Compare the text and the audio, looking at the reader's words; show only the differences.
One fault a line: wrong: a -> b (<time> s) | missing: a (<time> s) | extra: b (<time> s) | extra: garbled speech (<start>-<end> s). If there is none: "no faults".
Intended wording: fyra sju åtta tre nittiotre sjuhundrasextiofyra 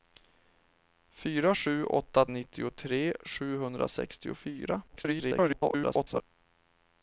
missing: tre (2.3 s)
extra: garbled speech (4.9-6.2 s)